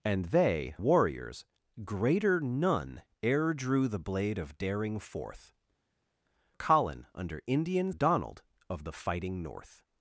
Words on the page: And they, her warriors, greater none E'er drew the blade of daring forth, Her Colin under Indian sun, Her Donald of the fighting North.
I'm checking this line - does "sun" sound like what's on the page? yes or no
no